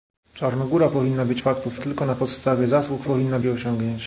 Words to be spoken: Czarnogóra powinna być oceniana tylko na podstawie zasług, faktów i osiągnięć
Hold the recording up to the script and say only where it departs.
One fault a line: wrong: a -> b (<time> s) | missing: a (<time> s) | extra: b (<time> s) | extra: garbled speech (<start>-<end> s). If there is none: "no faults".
wrong: oceniana -> faktów (1.4 s)
wrong: faktów -> powinna (3.0 s)